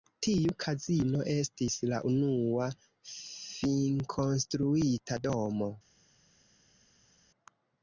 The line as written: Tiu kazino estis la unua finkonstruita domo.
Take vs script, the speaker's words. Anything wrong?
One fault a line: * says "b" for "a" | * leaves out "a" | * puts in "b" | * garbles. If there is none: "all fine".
all fine